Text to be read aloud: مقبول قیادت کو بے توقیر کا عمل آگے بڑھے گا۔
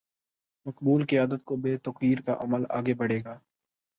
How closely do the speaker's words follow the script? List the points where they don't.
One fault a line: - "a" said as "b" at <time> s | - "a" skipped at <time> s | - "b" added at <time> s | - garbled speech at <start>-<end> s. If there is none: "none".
none